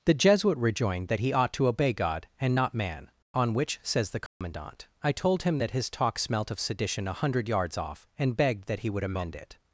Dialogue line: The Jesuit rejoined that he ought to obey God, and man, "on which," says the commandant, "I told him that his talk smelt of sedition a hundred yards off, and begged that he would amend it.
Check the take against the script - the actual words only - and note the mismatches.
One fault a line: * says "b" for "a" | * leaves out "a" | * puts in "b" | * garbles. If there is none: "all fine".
* puts in "not"